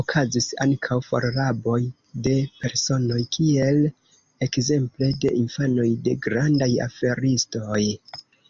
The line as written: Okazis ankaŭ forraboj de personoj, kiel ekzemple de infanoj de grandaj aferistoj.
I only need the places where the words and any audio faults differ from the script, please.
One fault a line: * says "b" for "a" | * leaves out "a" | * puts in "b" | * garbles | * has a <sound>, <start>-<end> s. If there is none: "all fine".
all fine